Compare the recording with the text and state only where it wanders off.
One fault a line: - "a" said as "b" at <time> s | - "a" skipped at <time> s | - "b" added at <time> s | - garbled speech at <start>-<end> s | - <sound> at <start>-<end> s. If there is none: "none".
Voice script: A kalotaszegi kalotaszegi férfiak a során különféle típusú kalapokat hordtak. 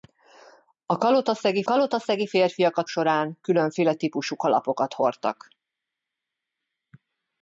none